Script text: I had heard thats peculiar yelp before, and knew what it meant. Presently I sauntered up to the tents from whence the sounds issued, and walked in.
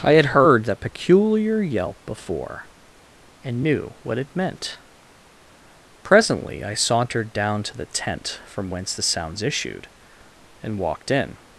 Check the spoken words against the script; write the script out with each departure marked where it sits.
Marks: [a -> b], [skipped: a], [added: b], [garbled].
I had heard [thats -> that] peculiar yelp before, and knew what it meant. Presently I sauntered [up -> down] to the [tents -> tent] from whence the sounds issued, and walked in.